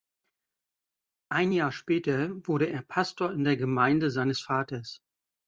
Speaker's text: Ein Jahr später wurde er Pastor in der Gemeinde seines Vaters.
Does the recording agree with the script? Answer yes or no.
yes